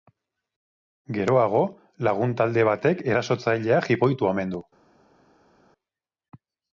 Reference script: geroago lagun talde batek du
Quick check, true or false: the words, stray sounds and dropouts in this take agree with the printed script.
false